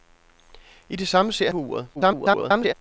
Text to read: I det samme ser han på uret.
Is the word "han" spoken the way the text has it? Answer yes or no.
no